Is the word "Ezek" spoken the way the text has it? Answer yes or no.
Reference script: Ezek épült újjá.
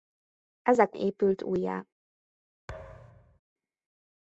yes